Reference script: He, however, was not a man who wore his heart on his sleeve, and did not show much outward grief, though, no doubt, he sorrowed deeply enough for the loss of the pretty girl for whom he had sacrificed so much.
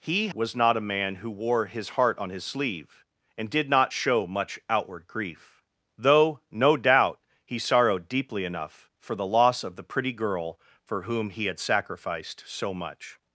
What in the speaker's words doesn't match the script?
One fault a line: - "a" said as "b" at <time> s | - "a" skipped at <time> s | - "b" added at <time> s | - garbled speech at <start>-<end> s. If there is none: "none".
- "however" skipped at 0.3 s